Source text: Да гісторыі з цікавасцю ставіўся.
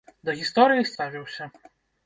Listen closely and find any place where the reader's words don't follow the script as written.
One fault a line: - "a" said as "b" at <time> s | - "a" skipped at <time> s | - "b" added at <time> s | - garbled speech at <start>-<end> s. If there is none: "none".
- "цікавасцю" skipped at 0.9 s